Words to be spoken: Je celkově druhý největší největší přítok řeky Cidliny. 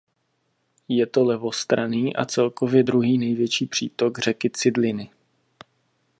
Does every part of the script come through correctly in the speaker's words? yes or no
no